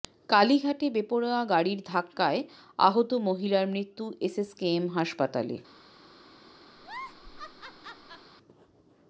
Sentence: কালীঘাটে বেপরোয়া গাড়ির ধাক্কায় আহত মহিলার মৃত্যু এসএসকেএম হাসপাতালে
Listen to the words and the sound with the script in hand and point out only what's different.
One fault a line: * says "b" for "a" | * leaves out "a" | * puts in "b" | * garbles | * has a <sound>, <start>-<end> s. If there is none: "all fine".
* has a laugh, 6.8-8.3 s